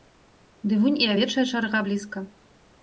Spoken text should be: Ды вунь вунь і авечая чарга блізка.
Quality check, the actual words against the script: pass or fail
fail